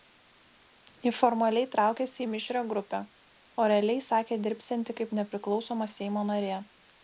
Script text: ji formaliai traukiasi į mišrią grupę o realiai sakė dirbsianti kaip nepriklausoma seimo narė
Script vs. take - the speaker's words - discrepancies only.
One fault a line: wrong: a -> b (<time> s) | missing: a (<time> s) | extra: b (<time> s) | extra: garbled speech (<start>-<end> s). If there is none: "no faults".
no faults